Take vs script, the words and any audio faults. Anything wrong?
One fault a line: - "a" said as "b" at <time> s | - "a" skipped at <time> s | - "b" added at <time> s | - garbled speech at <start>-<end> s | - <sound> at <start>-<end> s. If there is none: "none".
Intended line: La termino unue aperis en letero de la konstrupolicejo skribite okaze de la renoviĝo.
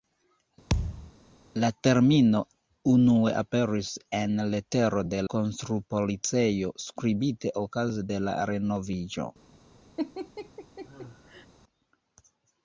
- thud at 0.7-1.1 s
- "la" skipped at 5.2 s
- laugh at 10.0-11.5 s